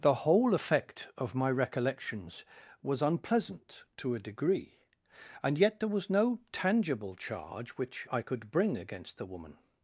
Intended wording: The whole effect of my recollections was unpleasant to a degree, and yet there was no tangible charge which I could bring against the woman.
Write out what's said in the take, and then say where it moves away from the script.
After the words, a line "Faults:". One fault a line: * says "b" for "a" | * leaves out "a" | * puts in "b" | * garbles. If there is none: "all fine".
The whole effect of my recollections was unpleasant to a degree, and yet there was no tangible charge which I could bring against the woman.
Faults:
all fine